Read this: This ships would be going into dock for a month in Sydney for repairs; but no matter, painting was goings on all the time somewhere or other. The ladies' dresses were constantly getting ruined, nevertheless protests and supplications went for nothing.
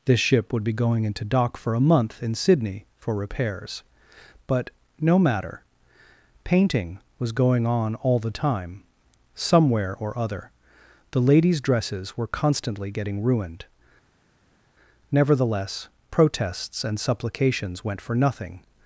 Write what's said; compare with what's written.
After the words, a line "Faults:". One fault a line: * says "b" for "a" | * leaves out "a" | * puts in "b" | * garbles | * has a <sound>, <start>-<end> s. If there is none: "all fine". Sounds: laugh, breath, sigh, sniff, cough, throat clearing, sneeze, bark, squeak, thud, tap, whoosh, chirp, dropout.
This ship would be going into dock for a month in Sydney for repairs; but no matter, painting was going on all the time somewhere or other. The ladies' dresses were constantly getting ruined, nevertheless protests and supplications went for nothing.
Faults:
* says "ship" for "ships"
* says "going" for "goings"